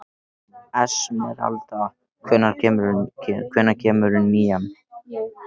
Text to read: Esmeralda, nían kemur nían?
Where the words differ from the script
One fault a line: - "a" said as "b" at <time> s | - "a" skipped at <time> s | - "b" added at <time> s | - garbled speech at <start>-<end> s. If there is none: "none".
- "nían" said as "hvenær" at 2.3 s